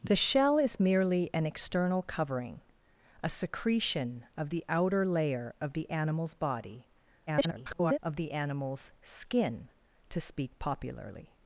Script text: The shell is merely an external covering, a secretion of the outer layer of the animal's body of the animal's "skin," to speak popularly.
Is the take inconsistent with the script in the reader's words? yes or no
yes